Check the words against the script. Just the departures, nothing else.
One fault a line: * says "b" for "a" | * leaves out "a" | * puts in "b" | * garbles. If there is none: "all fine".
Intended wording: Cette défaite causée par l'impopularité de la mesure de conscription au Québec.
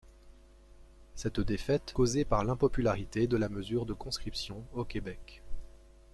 all fine